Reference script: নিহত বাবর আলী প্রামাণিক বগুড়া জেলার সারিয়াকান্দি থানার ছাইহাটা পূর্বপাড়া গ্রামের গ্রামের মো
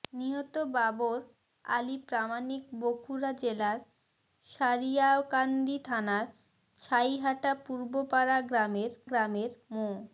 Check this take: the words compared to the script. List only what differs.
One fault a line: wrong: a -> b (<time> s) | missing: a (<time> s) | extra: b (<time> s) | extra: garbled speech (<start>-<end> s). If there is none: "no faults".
no faults